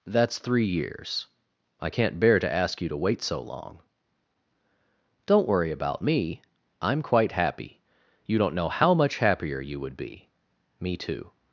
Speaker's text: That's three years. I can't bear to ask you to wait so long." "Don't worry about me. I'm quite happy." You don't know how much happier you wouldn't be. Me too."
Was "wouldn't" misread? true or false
true